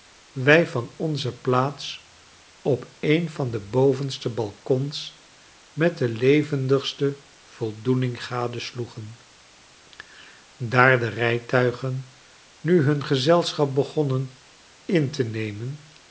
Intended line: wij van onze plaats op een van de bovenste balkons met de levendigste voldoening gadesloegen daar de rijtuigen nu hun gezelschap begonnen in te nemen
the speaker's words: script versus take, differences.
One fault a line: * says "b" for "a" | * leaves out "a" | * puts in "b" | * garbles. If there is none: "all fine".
all fine